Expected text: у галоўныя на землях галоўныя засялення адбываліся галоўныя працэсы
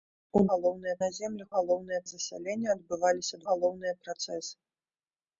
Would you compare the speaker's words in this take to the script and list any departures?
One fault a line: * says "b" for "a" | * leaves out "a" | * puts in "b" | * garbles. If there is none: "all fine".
all fine